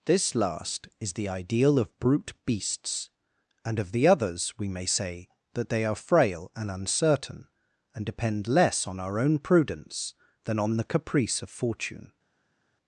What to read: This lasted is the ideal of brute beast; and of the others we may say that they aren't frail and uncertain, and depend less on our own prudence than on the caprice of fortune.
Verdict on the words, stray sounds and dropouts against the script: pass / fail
fail